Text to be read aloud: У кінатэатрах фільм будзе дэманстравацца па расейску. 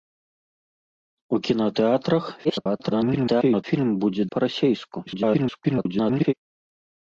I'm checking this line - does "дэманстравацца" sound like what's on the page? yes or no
no